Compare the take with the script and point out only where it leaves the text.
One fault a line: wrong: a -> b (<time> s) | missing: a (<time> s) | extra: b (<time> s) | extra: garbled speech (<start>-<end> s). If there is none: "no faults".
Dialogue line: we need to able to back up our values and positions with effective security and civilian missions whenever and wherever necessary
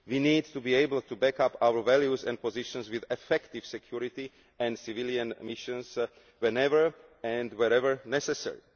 extra: be (0.6 s)